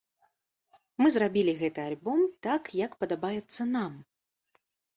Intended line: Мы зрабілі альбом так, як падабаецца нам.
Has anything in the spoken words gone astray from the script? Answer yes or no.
yes